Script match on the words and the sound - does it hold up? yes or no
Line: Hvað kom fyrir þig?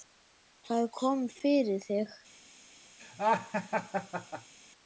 no